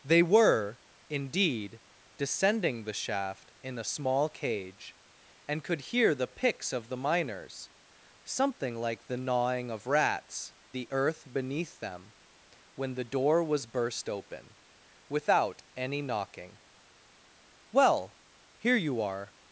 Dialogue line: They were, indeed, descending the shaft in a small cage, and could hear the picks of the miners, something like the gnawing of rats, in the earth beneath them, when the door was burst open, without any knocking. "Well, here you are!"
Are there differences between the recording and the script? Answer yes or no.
yes